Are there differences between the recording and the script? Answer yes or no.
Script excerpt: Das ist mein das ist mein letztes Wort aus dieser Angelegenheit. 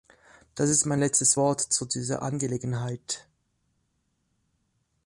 yes